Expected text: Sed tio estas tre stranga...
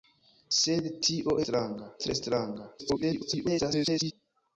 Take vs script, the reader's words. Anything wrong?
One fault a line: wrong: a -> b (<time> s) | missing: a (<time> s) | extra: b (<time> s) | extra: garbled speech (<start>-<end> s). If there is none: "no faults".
wrong: estas -> stranga (1.4 s)
extra: garbled speech (2.8-4.1 s)